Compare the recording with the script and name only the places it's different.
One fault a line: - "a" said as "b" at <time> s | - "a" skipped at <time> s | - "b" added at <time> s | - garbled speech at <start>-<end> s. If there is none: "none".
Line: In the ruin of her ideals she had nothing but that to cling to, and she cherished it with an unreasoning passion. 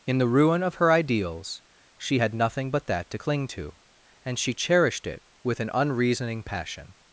none